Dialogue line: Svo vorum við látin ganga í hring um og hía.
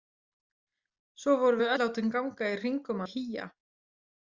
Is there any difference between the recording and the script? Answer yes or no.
no